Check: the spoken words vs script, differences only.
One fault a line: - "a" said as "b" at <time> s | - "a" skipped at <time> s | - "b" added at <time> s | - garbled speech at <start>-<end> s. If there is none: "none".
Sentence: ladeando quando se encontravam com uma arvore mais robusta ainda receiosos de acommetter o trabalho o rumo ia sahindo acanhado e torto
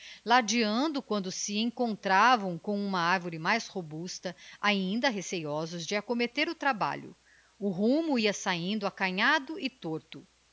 none